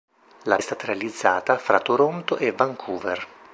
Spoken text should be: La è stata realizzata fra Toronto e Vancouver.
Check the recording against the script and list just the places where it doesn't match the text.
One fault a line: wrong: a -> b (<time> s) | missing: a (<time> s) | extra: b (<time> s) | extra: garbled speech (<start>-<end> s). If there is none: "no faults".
no faults